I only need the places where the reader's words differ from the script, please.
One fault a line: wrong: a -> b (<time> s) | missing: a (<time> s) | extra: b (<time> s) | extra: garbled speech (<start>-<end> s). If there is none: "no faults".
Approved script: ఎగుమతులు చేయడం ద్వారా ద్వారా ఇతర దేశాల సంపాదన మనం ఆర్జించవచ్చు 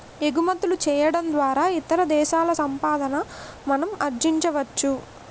missing: ద్వారా (1.6 s)